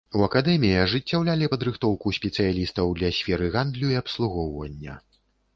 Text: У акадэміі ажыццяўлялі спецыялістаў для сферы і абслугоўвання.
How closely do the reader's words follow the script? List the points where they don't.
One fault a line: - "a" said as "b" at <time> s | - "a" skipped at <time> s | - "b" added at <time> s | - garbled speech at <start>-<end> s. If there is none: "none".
- "падрыхтоўку" added at 1.5 s
- "гандлю" added at 3.6 s